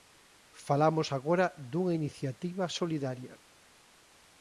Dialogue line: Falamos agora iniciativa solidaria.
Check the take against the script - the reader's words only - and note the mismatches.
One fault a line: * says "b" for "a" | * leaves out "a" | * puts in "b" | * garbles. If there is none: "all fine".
* puts in "dunha"